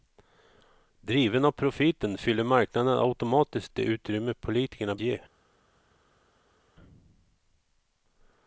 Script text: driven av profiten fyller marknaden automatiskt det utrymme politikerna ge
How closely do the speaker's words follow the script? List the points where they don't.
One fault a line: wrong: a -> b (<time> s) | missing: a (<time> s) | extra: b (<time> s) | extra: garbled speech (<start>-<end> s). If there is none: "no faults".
no faults